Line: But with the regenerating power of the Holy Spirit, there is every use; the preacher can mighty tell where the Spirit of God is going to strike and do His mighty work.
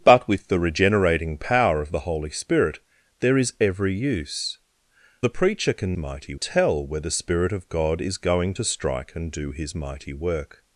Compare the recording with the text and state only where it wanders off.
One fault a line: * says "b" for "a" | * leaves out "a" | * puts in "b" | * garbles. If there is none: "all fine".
all fine